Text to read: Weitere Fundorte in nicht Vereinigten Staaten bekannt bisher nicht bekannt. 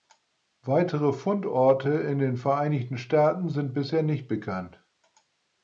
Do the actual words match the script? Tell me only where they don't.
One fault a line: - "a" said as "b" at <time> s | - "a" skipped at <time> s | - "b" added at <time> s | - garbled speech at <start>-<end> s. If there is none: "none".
- "nicht" said as "den" at 2.2 s
- "bekannt" said as "sind" at 3.5 s